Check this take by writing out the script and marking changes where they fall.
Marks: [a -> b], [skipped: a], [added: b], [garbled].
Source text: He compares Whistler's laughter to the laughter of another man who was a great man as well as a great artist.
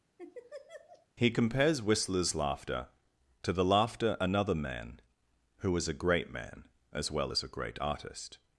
He compares Whistler's laughter to the laughter [skipped: of] another man who was a great man as well as a great artist.